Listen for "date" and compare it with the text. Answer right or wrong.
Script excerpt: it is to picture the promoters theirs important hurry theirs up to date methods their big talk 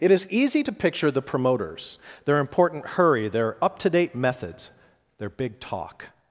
right